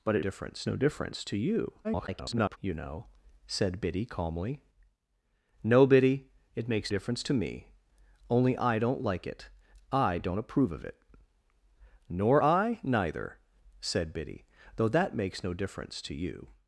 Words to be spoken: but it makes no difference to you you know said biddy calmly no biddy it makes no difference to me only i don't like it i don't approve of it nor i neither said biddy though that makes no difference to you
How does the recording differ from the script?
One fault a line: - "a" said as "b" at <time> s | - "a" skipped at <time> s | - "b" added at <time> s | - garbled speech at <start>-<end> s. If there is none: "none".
- "makes" said as "difference" at 0.2 s
- garbled speech at 1.8-2.6 s
- "no" skipped at 6.9 s